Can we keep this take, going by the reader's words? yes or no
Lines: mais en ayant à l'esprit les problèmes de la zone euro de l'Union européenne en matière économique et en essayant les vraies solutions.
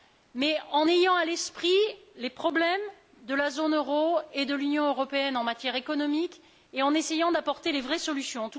no